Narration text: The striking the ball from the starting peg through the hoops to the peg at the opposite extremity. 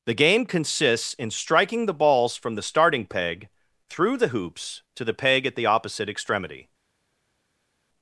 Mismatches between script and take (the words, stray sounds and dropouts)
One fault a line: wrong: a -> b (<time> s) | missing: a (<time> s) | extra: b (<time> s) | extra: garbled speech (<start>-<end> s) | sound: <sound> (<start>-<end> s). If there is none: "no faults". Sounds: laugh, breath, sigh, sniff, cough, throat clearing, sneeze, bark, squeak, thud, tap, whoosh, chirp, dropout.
extra: game consists in (0.1 s)
wrong: ball -> balls (1.9 s)